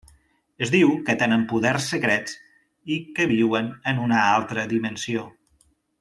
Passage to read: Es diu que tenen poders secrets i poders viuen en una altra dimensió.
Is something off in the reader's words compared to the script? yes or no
yes